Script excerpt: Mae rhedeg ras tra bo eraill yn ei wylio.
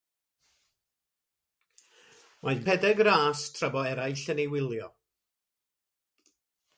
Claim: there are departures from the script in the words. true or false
false